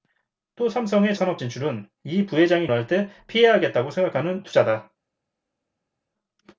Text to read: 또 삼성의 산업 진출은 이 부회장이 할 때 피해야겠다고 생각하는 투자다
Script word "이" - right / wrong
right